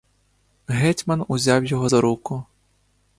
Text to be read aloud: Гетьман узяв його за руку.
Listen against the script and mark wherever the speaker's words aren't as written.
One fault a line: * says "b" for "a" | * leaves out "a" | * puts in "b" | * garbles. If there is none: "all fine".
all fine